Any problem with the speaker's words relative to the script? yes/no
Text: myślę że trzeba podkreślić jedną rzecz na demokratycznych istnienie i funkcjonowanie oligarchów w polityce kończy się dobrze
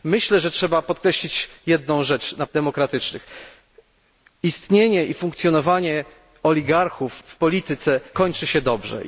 no